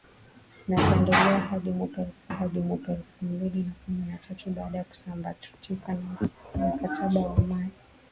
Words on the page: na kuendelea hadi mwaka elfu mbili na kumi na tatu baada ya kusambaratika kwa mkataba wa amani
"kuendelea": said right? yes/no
yes